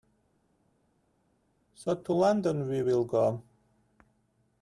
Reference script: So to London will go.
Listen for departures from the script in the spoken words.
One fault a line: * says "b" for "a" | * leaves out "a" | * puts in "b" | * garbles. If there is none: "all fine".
* puts in "we"